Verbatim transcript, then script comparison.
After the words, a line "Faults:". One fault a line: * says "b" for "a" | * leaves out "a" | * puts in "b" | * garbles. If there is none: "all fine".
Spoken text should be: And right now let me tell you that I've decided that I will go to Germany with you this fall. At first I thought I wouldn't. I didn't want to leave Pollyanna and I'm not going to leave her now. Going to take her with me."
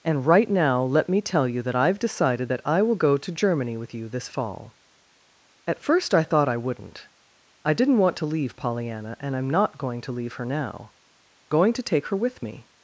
And right now let me tell you that I've decided that I will go to Germany with you this fall. At first I thought I wouldn't. I didn't want to leave Pollyanna and I'm not going to leave her now. Going to take her with me."
Faults:
all fine